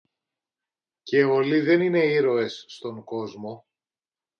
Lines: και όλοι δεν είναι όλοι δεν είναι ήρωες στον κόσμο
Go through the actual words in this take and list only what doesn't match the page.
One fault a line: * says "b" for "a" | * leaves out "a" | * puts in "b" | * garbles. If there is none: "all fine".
* leaves out "όλοι δεν είναι"